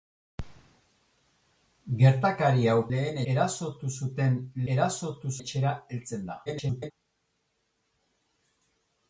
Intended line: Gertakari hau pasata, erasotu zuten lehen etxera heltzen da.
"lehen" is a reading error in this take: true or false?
true